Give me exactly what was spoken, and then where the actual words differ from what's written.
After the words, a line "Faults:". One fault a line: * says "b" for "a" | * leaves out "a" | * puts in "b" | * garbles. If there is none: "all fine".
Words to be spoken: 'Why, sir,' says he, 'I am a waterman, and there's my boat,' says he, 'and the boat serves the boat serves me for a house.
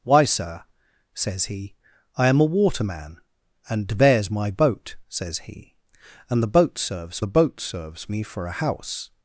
'Why, sir,' says he, 'I am a waterman, and there's my boat,' says he, 'and the boat serves the boat serves me for a house.
Faults:
all fine